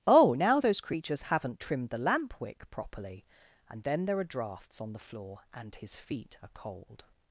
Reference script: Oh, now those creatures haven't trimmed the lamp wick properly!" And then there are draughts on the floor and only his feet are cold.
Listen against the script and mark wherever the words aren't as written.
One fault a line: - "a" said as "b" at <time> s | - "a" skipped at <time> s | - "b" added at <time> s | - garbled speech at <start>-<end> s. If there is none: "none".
- "only" skipped at 5.7 s